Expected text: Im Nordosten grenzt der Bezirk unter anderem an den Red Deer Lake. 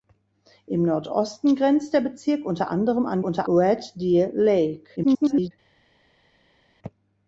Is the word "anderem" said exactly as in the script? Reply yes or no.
yes